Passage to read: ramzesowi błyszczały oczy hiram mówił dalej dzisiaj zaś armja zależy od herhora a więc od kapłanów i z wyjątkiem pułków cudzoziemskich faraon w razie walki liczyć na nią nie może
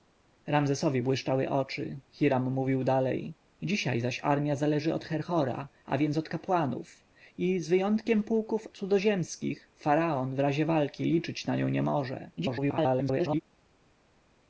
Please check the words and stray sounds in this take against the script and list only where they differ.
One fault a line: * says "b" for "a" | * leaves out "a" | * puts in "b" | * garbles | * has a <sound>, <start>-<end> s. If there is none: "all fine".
* garbles